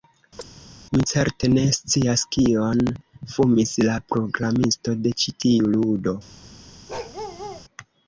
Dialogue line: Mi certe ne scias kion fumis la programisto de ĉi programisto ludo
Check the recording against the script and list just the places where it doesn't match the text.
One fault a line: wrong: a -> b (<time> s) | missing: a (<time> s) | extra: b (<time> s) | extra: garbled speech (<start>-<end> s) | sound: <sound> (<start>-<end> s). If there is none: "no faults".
sound: chirp (0.4-0.5 s)
wrong: programisto -> tiu (5.5 s)
sound: bark (6.9-7.7 s)